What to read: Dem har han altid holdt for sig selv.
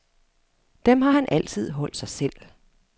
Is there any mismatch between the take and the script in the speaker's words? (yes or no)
yes